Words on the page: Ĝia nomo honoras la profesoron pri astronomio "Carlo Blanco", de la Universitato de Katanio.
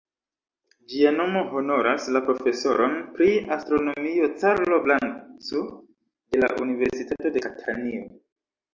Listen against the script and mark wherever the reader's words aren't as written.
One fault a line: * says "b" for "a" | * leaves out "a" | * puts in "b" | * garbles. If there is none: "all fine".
all fine